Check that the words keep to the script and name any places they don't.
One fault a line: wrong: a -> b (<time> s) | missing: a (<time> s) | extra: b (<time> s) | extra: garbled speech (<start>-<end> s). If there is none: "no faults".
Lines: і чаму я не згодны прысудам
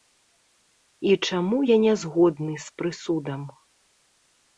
extra: з (2.7 s)